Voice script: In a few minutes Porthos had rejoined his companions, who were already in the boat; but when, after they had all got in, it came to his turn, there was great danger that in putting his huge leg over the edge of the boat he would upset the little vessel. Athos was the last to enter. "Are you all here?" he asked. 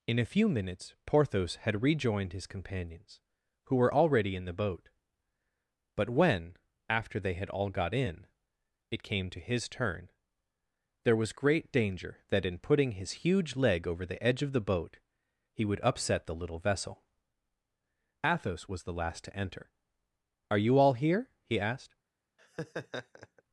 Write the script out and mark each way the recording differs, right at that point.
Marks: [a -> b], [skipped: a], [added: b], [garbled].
In a few minutes Porthos had rejoined his companions, who were already in the boat; but when, after they had all got in, it came to his turn, there was great danger that in putting his huge leg over the edge of the boat he would upset the little vessel. Athos was the last to enter. "Are you all here?" he asked.